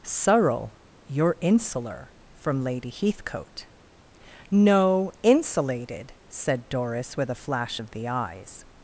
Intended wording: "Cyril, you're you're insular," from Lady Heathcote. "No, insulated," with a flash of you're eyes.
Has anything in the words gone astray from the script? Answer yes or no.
yes